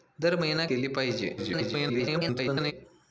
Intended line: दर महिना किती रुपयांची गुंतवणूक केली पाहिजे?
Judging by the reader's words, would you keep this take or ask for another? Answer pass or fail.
fail